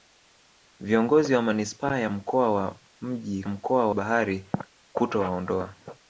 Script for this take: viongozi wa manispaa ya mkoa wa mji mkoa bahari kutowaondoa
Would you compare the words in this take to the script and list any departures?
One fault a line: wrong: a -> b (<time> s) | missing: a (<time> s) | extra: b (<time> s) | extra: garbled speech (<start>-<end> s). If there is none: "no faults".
no faults